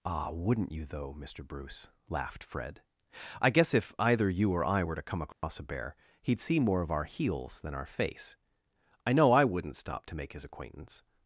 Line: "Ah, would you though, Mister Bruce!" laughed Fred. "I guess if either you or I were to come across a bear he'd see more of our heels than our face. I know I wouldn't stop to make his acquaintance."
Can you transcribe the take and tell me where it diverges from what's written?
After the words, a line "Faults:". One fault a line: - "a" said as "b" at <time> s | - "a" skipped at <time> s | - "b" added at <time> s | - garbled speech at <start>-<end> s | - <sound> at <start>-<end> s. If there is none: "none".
"Ah, wouldn't you though, Mister Bruce!" laughed Fred. "I guess if either you or I were to come across a bear he'd see more of our heels than our face. I know I wouldn't stop to make his acquaintance."
Faults:
- "would" said as "wouldn't" at 0.3 s
- dropout at 5.3-5.4 s